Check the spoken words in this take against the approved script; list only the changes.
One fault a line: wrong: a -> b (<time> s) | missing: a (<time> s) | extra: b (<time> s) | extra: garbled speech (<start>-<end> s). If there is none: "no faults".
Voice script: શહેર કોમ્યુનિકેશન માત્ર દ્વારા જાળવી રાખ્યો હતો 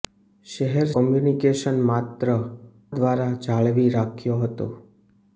no faults